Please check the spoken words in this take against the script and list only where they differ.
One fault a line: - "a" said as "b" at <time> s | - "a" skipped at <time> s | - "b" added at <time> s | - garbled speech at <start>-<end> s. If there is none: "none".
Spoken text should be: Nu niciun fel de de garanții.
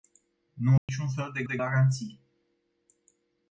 none